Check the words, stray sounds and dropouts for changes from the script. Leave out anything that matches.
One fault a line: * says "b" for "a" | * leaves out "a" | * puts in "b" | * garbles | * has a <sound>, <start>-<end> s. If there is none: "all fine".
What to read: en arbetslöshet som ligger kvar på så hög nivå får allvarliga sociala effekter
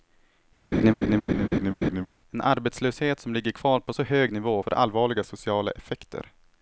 * has a laugh, 0.7-2.1 s